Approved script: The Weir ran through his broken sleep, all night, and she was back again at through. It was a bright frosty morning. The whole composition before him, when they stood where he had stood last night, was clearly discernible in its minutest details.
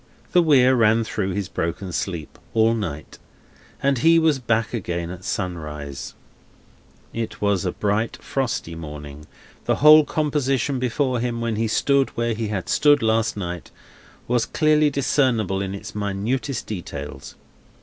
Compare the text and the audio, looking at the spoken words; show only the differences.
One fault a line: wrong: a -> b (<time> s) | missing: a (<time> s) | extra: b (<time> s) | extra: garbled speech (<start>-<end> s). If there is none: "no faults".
wrong: she -> he (4.0 s)
wrong: through -> sunrise (5.2 s)
wrong: they -> he (11.6 s)